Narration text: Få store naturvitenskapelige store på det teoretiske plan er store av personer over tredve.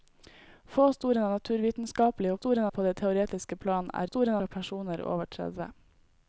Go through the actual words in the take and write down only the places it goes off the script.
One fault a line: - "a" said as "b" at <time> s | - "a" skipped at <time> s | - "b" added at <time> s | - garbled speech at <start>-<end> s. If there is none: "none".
none